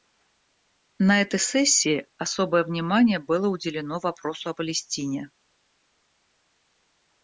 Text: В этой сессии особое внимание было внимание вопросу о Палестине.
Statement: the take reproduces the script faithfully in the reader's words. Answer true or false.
false